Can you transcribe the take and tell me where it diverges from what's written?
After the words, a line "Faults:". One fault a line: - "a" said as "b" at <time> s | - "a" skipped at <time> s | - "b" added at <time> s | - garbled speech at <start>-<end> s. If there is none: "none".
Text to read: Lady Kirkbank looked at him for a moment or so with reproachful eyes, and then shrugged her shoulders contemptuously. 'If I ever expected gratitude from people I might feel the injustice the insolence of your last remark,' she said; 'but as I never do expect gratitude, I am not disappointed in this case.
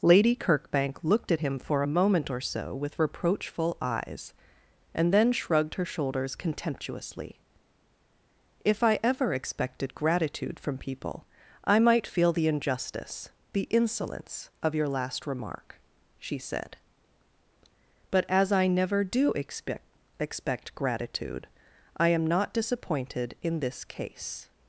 Lady Kirkbank looked at him for a moment or so with reproachful eyes, and then shrugged her shoulders contemptuously. 'If I ever expected gratitude from people I might feel the injustice the insolence of your last remark,' she said; 'but as I never do expect expect gratitude, I am not disappointed in this case.
Faults:
- "expect" added at 20.2 s